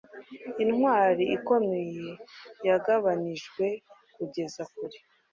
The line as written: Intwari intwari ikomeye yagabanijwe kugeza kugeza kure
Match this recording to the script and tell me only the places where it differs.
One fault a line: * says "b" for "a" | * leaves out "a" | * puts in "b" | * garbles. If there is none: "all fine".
* leaves out "intwari"
* leaves out "kugeza"